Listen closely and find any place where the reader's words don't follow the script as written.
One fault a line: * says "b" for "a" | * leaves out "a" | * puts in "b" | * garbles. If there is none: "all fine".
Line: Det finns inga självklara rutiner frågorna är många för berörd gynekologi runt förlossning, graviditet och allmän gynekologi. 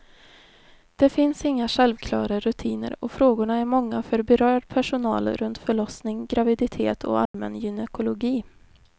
* puts in "och"
* says "personal" for "gynekologi"